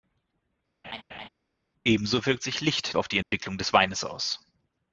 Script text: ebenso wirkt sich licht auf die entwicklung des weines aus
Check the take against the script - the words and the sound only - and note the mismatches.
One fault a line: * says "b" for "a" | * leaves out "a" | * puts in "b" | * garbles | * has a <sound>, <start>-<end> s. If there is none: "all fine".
* has a laugh, 0.8-1.3 s
* has a dropout, 3.2-3.3 s